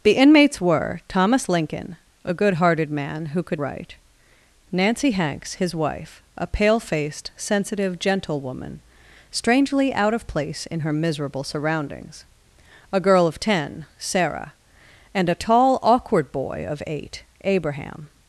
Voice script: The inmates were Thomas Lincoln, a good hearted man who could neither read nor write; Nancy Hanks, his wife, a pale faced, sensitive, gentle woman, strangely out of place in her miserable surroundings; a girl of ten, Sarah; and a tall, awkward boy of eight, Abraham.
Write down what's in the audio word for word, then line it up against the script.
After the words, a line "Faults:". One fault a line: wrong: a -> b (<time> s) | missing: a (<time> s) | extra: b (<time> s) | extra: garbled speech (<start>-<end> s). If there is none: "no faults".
The inmates were Thomas Lincoln, a good hearted man who could write; Nancy Hanks, his wife, a pale faced, sensitive, gentle woman, strangely out of place in her miserable surroundings; a girl of ten, Sarah; and a tall, awkward boy of eight, Abraham.
Faults:
missing: neither read nor (3.6 s)